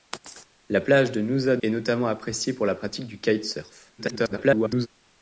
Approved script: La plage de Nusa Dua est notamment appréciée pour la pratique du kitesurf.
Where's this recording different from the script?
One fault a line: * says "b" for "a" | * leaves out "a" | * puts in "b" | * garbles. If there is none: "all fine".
* leaves out "Dua"
* garbles